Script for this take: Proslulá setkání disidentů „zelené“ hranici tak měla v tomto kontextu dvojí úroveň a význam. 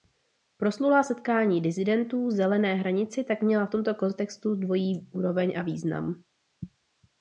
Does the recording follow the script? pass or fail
pass